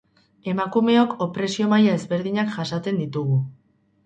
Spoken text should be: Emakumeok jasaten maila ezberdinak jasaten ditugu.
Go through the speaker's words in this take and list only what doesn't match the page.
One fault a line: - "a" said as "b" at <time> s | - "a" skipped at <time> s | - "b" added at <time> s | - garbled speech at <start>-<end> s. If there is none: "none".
- "jasaten" said as "opresio" at 1.2 s